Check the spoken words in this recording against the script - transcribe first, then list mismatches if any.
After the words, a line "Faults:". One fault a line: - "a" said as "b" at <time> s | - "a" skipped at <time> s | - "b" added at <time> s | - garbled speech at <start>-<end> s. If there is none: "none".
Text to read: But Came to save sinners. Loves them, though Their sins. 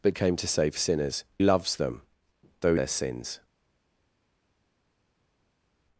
But Came to save sinners. Loves them, though Their sins.
Faults:
none